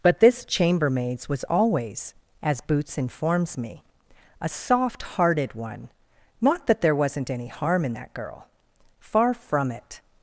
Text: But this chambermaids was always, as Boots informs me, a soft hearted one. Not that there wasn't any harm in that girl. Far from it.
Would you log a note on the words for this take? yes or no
no